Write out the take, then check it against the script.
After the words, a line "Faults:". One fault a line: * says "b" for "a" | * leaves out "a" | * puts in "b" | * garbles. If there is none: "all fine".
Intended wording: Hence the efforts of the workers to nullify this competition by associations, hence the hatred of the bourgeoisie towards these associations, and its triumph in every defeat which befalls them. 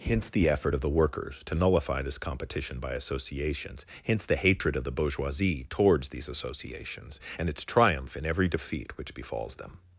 Hence the effort of the workers to nullify this competition by associations, hence the hatred of the bourgeoisie towards these associations, and its triumph in every defeat which befalls them.
Faults:
* says "effort" for "efforts"